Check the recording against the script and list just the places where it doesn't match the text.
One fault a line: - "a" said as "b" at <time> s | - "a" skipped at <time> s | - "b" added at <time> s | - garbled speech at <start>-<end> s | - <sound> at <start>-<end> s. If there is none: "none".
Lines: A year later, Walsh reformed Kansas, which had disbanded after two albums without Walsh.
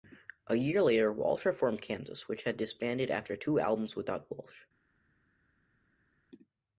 none